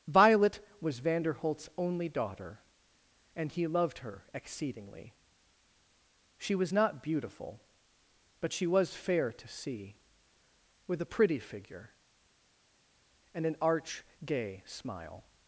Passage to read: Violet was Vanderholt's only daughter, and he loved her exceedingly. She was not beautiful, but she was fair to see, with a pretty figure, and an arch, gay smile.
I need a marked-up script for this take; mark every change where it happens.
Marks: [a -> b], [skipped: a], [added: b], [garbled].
Violet was Vanderholt's only daughter, and he loved her exceedingly. She was not beautiful, but she was fair to see, with a pretty figure, and an arch, gay smile.